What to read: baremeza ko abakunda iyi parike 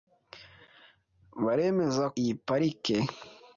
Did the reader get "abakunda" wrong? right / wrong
wrong